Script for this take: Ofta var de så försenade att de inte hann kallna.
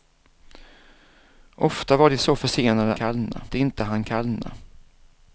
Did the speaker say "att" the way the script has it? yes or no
no